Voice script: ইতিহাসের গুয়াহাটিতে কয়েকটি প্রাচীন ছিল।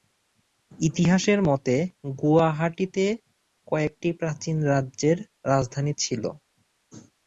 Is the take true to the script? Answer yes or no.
no